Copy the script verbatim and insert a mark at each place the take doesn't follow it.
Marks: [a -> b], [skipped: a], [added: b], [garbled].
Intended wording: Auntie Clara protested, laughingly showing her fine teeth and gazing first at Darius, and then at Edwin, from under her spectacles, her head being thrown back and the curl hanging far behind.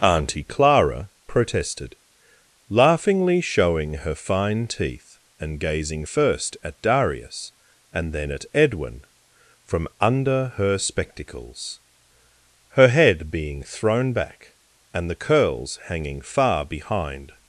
Auntie Clara protested, laughingly showing her fine teeth and gazing first at Darius, and then at Edwin, from under her spectacles, her head being thrown back and the [curl -> curls] hanging far behind.